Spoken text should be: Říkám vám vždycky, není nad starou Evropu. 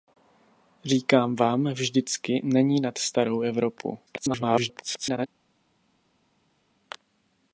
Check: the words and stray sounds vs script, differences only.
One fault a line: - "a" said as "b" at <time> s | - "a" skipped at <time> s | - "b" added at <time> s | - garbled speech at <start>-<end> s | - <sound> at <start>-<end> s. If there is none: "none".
- garbled speech at 4.1-5.3 s